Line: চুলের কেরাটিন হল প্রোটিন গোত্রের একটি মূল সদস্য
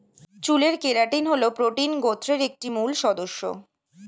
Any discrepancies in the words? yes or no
no